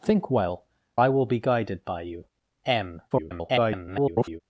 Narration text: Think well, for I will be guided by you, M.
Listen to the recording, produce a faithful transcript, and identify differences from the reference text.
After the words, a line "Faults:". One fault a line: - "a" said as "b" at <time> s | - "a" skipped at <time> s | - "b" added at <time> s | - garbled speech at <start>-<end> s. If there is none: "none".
Think well, I will be guided by you, M. [garbled]
Faults:
- "for" skipped at 0.7 s
- garbled speech at 3.1-4.4 s